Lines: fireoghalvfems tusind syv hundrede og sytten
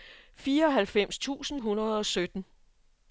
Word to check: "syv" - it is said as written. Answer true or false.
false